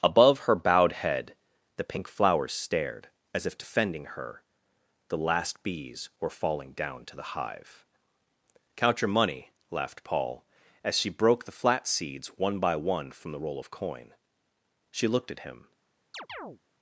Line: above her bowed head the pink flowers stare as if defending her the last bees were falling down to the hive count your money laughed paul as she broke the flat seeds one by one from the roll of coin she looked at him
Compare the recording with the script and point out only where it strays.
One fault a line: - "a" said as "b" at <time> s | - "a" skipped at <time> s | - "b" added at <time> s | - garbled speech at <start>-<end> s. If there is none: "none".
- "stare" said as "stared" at 2.5 s